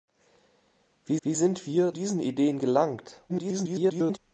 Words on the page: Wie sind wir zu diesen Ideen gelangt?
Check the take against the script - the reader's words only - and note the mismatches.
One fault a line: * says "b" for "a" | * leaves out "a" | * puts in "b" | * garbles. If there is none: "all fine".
* puts in "wie"
* leaves out "zu"
* garbles